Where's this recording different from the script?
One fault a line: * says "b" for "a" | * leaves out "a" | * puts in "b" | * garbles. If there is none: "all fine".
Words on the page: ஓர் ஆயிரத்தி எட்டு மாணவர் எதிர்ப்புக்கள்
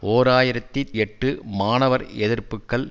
all fine